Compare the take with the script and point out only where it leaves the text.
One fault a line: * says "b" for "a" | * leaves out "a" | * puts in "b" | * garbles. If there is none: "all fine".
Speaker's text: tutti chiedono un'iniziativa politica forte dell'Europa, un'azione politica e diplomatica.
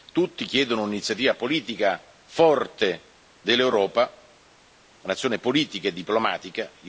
all fine